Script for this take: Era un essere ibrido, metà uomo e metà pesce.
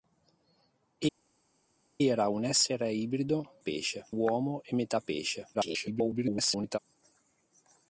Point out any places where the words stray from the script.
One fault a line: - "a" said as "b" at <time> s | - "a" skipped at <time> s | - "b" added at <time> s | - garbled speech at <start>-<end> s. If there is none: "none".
- "metà" said as "pesce" at 3.6 s
- garbled speech at 5.5-6.8 s